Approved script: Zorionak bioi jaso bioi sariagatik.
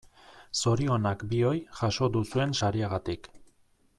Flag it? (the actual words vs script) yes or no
yes